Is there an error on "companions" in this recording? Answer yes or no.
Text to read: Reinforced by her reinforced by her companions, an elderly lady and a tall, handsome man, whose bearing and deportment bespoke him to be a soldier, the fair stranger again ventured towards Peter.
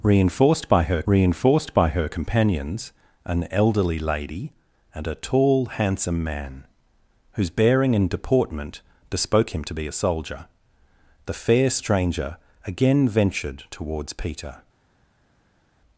no